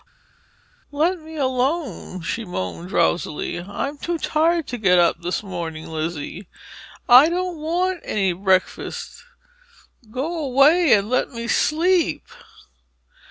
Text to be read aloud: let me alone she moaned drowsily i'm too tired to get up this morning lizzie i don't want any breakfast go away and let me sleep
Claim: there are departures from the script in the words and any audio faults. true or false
false